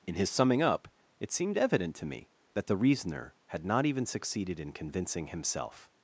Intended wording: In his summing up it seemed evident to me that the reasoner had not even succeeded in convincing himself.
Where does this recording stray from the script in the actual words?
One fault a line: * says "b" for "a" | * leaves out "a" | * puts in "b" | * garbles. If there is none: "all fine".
all fine